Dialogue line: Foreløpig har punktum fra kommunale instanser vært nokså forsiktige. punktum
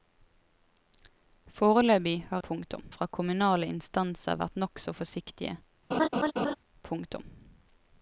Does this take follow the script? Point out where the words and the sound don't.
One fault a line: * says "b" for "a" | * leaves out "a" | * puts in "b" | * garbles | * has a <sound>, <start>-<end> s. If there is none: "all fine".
* has a laugh, 5.9-6.6 s